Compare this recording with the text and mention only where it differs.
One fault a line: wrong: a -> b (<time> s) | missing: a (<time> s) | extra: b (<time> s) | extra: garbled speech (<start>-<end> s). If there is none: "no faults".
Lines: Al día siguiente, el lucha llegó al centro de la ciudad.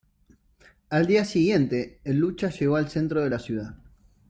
no faults